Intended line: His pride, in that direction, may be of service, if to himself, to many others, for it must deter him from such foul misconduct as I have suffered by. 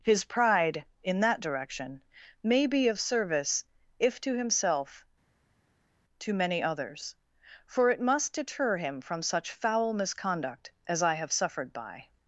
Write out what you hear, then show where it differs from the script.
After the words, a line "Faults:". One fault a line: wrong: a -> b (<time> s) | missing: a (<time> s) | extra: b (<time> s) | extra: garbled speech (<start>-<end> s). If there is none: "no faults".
His pride, in that direction, may be of service, if to himself, to many others, for it must deter him from such foul misconduct as I have suffered by.
Faults:
no faults